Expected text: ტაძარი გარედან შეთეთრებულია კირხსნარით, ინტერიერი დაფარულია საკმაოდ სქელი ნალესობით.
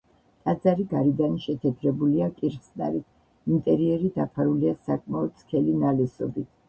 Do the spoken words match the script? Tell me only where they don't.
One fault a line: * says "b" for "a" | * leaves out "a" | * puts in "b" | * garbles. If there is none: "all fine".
all fine